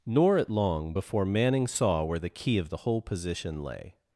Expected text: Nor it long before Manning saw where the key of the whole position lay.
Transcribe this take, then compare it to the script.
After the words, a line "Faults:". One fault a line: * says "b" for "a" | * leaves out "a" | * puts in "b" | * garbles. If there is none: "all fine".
Nor it long before Manning saw where the key of the whole position lay.
Faults:
all fine